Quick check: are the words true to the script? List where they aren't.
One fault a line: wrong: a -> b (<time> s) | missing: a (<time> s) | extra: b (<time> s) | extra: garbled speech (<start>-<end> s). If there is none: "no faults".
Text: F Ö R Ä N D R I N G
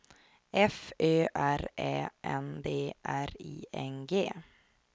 no faults